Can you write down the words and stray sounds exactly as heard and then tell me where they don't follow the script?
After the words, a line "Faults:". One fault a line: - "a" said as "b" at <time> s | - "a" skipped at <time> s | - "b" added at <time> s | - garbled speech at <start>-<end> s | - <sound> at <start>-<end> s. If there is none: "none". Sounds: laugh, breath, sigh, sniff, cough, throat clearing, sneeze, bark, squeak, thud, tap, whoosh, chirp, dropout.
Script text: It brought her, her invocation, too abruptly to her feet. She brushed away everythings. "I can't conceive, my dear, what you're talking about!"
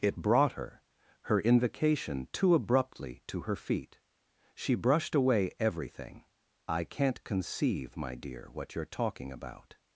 It brought her, her invocation, too abruptly to her feet. She brushed away everything. "I can't conceive, my dear, what you're talking about!"
Faults:
- "everythings" said as "everything" at 5.6 s